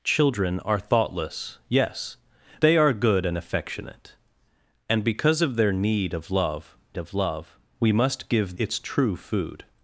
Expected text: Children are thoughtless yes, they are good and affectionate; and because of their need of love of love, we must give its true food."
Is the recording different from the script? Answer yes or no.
no